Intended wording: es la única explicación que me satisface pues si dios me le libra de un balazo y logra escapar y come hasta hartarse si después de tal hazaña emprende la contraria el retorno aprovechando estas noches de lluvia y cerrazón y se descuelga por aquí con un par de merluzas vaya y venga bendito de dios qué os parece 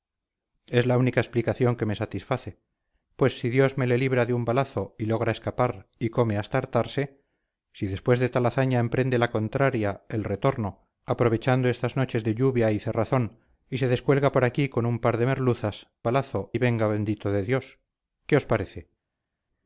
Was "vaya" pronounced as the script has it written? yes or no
no